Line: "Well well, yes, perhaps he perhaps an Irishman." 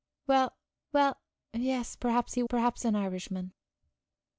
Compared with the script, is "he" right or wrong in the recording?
right